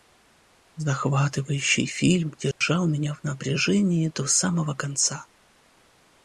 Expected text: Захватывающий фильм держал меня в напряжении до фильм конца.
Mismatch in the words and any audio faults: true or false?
true